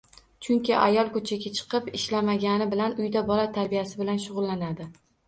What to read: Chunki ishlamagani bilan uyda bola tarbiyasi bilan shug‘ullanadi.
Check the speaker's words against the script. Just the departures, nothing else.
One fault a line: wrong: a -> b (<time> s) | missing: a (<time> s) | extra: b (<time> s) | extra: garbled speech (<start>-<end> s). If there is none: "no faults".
extra: ayol ko‘chaga chiqib (0.8 s)